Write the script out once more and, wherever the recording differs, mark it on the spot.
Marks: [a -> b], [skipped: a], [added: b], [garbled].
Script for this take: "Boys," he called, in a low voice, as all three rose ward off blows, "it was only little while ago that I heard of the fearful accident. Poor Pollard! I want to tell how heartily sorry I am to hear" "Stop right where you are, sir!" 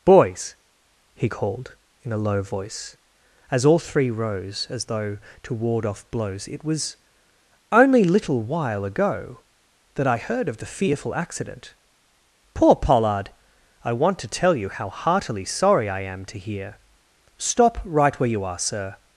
"Boys," he called, in a low voice, as all three rose [added: as though to] ward off blows, "it was only little while ago that I heard of the fearful accident. Poor Pollard! I want to tell [added: you] how heartily sorry I am to hear" "Stop right where you are, sir!"